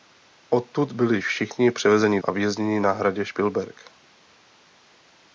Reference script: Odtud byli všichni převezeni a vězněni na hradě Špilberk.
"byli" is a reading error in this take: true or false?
false